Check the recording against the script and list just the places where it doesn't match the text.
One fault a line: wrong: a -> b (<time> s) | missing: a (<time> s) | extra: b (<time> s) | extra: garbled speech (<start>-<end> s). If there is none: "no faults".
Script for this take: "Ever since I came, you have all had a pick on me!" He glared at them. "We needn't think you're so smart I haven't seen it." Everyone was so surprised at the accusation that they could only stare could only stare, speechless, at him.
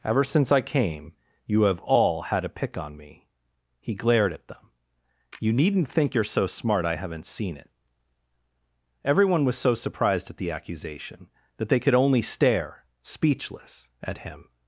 wrong: We -> You (5.4 s)
missing: could only stare (12.8 s)